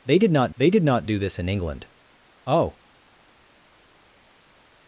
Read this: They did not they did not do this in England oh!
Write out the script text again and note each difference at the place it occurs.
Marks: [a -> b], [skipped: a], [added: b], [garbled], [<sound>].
They did not they did not do this in England oh!